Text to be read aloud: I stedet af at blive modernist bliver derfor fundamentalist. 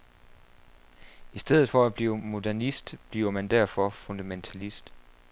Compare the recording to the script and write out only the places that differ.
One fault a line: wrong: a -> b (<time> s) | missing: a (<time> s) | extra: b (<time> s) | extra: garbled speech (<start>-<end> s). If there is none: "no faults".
wrong: af -> for (1.7 s)
extra: man (3.3 s)